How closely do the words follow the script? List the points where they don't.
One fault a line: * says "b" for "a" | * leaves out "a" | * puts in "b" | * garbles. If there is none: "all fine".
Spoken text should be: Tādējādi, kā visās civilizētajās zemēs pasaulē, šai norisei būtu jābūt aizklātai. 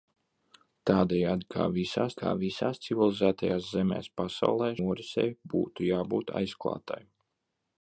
* puts in "kā visās"
* leaves out "šai"